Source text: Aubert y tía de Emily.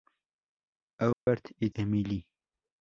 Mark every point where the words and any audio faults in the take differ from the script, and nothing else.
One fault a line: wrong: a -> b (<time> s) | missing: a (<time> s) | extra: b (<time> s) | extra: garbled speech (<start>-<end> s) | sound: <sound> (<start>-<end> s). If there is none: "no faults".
sound: dropout (1.1-1.3 s)
missing: tía de (1.7 s)